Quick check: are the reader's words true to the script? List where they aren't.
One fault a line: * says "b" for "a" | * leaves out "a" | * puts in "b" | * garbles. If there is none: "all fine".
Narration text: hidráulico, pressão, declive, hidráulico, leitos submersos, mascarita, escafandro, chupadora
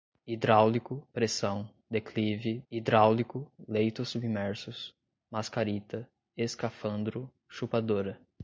all fine